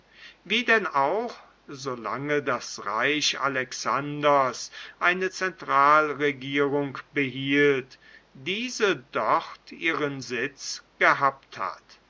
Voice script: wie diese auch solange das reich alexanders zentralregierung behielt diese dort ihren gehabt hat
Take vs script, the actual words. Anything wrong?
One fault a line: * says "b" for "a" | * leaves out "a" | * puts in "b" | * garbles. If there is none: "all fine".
* says "denn" for "diese"
* puts in "eine"
* puts in "sitz"